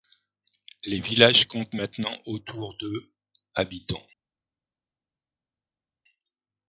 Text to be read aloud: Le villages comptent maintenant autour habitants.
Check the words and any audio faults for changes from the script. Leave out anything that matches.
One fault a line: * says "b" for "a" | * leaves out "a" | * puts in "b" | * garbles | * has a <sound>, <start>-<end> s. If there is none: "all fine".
* says "Les" for "Le"
* puts in "de"